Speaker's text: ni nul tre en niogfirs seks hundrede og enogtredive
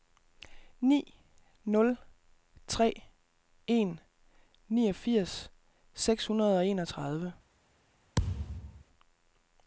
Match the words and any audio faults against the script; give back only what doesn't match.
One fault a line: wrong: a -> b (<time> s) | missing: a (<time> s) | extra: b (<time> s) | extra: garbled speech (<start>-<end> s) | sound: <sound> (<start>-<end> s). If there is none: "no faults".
sound: thud (8.2-8.8 s)